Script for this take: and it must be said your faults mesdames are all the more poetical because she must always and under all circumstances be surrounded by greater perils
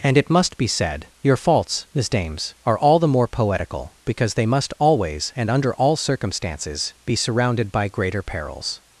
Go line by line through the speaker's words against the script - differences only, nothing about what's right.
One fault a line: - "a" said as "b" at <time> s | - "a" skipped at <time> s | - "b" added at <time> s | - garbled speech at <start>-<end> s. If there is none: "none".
- "she" said as "they" at 4.3 s